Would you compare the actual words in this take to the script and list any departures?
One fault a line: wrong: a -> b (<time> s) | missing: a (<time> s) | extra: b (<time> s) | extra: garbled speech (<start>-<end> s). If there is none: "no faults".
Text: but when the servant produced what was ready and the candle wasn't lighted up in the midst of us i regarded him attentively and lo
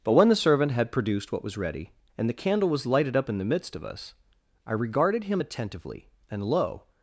extra: had (0.7 s)
wrong: wasn't -> was (2.7 s)